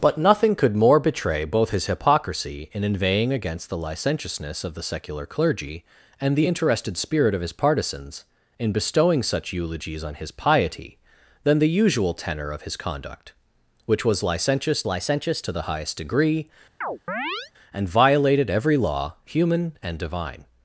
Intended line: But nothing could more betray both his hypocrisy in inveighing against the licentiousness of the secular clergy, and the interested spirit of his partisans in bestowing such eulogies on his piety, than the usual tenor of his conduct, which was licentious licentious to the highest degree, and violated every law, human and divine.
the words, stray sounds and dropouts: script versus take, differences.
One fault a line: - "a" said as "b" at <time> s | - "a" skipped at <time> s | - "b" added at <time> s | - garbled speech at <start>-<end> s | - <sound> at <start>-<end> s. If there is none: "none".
- chirp at 16.8-17.5 s